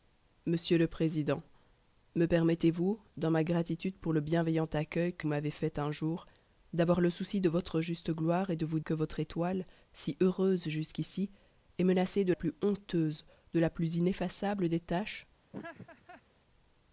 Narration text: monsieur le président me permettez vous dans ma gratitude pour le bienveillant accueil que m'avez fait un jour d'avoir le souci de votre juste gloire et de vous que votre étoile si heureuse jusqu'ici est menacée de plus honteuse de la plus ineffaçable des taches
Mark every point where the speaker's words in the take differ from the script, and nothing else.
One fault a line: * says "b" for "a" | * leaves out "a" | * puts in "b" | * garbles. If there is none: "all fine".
all fine